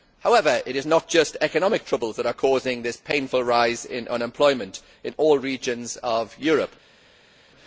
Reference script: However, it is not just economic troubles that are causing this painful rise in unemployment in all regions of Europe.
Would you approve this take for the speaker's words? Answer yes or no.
yes